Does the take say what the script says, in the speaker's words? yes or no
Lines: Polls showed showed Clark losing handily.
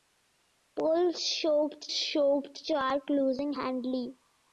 yes